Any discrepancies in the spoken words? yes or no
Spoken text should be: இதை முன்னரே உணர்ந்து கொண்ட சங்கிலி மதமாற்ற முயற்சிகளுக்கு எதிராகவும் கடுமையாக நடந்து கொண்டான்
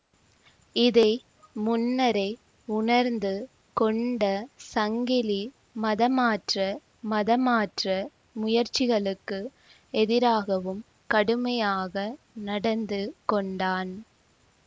yes